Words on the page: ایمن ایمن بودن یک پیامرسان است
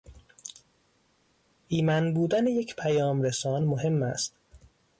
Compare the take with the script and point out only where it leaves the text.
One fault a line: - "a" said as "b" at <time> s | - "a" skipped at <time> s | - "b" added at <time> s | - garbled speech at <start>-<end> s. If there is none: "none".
- "ایمن" skipped at 2.1 s
- "مهم" added at 3.6 s